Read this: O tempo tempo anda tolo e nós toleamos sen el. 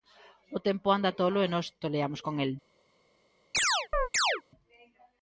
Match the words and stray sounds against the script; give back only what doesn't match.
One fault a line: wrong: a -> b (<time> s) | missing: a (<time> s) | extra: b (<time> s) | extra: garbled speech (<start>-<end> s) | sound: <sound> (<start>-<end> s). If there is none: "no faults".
missing: tempo (0.9 s)
wrong: sen -> con (2.3 s)
sound: chirp (3.5-4.4 s)